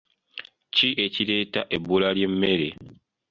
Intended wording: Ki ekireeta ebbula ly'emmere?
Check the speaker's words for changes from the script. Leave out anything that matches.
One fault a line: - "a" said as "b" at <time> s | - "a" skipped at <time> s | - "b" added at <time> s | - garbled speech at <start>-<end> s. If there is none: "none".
none